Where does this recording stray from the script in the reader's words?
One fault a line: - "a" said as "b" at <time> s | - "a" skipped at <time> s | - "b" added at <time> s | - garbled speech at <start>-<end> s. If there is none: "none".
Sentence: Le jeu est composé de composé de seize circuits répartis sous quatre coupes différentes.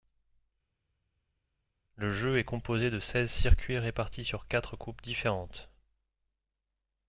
- "composé de" skipped at 3.0 s
- "sous" said as "sur" at 4.2 s